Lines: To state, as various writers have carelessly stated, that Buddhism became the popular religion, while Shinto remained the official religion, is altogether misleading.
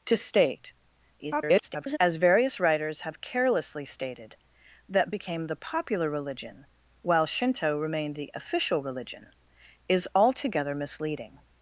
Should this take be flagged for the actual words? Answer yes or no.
yes